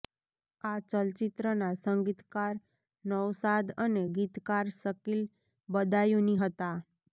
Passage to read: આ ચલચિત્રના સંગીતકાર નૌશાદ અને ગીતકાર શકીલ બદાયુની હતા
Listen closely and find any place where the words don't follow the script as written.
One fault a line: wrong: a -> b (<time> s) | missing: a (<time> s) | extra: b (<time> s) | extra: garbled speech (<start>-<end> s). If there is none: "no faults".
no faults